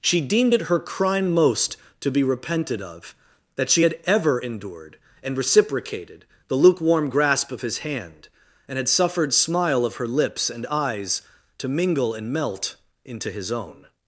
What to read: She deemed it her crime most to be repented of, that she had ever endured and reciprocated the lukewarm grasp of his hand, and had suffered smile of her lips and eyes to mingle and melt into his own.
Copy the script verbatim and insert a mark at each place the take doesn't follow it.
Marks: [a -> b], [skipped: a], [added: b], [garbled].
She deemed it her crime most to be repented of, that she had ever endured and reciprocated the lukewarm grasp of his hand, and had suffered smile of her lips and eyes to mingle and melt into his own.